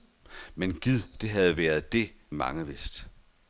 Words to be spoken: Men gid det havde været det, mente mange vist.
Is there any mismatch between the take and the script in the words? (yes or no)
yes